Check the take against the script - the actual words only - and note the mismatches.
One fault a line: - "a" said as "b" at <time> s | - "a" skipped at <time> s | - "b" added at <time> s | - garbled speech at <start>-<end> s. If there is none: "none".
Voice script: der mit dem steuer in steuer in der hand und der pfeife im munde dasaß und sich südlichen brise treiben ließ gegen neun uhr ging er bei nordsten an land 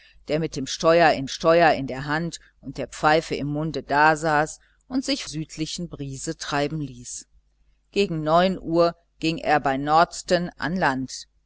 none